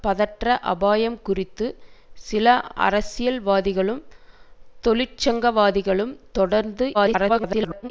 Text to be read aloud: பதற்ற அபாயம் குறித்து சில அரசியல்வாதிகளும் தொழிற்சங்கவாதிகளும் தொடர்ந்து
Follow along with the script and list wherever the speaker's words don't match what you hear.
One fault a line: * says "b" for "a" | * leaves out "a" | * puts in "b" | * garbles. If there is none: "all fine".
* garbles